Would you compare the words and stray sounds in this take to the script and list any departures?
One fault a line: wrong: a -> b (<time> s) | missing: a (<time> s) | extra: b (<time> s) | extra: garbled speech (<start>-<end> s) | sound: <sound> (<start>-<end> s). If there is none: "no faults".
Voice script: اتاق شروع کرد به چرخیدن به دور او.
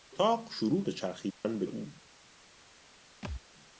missing: کرد (0.8 s)
sound: dropout (1.3-1.4 s)
missing: دور (1.7 s)
sound: thud (3.2-3.4 s)